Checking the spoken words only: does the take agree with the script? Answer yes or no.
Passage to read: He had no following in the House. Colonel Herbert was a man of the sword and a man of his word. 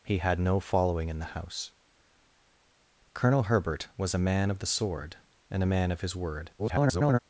no